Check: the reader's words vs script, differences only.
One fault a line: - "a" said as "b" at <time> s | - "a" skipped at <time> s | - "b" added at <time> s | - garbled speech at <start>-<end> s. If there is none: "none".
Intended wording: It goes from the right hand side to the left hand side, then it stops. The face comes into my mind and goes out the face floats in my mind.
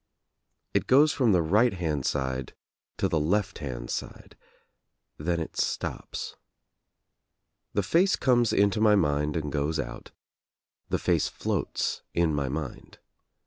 none